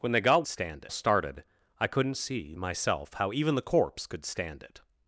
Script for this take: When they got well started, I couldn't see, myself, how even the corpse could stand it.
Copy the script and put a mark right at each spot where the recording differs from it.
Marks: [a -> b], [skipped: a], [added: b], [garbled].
When they got [well -> stand] started, I couldn't see, myself, how even the corpse could stand it.